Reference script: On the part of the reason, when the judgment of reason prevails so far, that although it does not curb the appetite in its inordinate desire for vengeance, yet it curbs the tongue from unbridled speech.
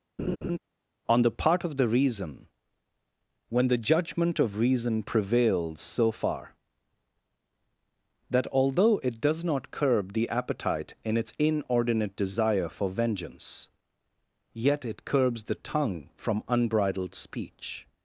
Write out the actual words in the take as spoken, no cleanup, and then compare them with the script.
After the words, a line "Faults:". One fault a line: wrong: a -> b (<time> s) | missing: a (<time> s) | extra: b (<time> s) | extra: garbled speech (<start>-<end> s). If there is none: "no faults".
On the part of the reason, when the judgment of reason prevails so far, that although it does not curb the appetite in its inordinate desire for vengeance, yet it curbs the tongue from unbridled speech.
Faults:
no faults